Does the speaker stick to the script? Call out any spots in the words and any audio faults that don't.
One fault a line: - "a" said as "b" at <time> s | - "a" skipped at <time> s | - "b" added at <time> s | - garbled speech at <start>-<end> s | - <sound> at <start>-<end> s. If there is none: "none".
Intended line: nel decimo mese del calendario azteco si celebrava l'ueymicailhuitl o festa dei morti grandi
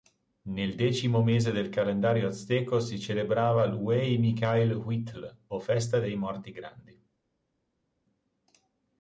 none